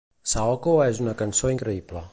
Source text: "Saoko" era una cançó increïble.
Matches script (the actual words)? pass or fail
fail